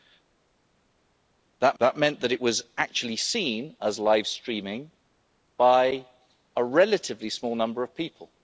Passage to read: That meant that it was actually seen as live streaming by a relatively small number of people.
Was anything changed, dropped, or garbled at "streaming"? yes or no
no